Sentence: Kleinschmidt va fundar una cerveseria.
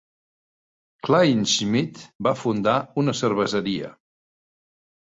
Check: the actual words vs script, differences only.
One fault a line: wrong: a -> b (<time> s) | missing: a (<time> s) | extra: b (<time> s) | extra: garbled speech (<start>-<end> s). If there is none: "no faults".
no faults